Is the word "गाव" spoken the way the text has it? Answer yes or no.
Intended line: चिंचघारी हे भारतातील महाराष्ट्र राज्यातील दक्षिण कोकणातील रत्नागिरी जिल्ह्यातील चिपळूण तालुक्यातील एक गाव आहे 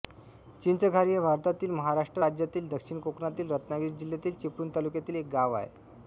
yes